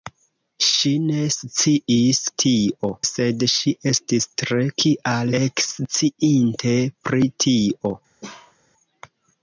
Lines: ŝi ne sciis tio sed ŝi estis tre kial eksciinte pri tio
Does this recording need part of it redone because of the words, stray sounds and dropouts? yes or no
yes